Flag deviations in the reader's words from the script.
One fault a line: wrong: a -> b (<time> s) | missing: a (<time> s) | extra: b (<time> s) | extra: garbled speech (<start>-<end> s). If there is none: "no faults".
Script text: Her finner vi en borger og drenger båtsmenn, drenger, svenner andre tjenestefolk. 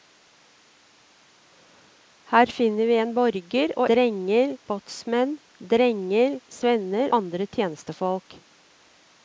no faults